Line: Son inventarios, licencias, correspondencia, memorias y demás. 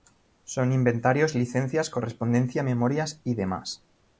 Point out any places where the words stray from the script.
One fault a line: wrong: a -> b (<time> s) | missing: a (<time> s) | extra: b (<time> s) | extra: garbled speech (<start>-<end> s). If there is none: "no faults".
no faults